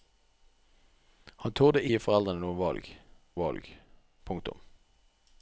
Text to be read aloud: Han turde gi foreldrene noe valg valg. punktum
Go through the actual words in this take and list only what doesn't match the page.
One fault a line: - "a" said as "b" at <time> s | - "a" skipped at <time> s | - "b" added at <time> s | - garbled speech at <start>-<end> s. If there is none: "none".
none